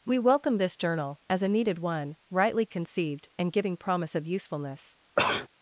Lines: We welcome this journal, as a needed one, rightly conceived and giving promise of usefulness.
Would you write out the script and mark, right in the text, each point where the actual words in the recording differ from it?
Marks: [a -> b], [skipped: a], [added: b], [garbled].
We welcome this journal, as a needed one, rightly conceived and giving promise of usefulness.